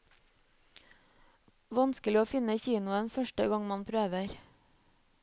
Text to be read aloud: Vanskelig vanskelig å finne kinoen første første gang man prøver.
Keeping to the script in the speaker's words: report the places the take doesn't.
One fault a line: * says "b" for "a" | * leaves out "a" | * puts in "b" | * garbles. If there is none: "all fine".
* leaves out "vanskelig"
* leaves out "første"